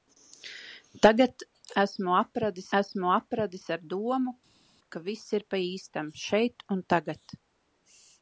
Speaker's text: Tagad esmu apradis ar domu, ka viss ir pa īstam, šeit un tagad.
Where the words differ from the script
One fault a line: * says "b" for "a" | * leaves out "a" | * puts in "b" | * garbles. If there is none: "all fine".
* puts in "esmu apradis"